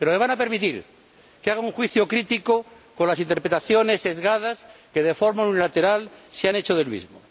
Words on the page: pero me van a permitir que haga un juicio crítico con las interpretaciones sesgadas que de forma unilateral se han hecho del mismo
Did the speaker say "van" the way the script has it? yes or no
yes